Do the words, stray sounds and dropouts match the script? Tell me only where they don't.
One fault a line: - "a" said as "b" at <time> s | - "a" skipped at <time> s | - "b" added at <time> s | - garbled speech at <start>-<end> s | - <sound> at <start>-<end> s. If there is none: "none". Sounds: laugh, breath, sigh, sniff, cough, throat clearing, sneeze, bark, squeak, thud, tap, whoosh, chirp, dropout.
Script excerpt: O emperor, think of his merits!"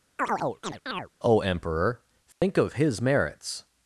- chirp at 0.2-1.1 s
- dropout at 2.3-2.4 s